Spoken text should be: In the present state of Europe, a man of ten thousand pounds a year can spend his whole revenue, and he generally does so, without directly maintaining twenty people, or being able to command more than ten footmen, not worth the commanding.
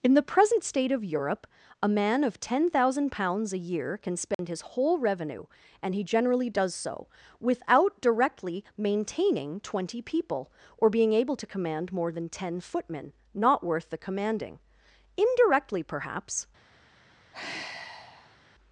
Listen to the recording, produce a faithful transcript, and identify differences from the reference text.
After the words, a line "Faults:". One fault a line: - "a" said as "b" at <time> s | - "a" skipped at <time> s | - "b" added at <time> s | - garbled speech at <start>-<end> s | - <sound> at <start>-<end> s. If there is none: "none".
In the present state of Europe, a man of ten thousand pounds a year can spend his whole revenue, and he generally does so, without directly maintaining twenty people, or being able to command more than ten footmen, not worth the commanding. Indirectly, perhaps
Faults:
- dropout at 4.3-4.4 s
- "Indirectly perhaps" added at 15.2 s
- sigh at 17.3-18.4 s